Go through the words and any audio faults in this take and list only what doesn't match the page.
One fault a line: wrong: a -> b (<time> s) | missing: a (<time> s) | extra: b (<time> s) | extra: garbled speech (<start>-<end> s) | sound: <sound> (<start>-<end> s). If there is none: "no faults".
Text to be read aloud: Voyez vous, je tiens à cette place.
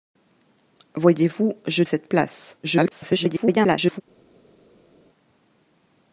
missing: tiens à (1.8 s)
extra: garbled speech (2.6-4.0 s)